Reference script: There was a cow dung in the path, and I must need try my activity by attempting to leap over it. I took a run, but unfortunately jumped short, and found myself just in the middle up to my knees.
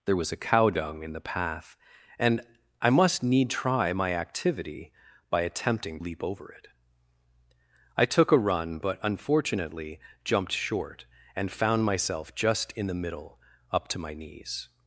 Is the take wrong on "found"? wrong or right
right